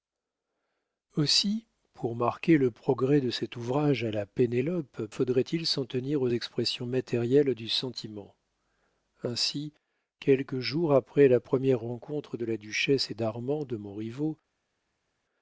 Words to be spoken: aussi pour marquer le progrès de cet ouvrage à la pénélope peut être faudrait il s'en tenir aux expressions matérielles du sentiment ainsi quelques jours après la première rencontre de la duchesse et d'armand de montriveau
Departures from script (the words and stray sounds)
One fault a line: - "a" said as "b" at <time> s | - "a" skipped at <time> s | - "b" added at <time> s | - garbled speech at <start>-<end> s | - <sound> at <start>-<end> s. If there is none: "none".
- "peut être" skipped at 5.0 s